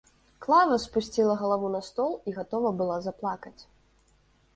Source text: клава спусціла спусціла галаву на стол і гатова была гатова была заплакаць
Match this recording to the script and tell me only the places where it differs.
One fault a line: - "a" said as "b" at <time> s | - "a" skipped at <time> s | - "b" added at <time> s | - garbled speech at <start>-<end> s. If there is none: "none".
- "спусціла" skipped at 1.4 s
- "гатова была" skipped at 3.0 s